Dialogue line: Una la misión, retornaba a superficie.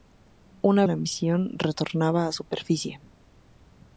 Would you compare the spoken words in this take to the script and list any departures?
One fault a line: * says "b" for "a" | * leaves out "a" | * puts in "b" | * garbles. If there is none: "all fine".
all fine